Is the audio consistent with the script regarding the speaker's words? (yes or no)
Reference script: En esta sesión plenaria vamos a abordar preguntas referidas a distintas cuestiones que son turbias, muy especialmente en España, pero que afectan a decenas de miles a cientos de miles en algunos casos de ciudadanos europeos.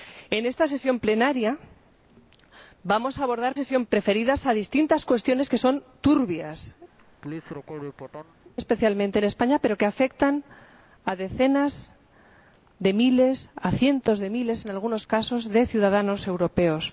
no